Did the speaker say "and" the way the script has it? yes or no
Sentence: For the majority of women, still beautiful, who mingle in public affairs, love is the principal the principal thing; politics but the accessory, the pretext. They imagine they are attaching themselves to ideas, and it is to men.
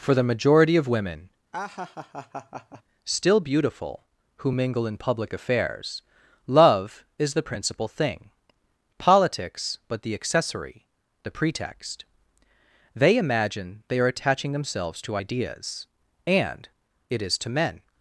yes